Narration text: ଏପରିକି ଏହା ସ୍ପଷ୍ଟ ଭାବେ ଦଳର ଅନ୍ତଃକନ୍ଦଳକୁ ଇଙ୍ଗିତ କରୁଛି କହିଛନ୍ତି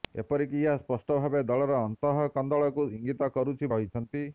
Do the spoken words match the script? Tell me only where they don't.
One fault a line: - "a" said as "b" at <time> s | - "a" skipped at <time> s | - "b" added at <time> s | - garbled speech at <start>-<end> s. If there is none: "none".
none